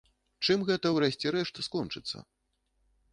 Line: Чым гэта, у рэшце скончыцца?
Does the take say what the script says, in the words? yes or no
no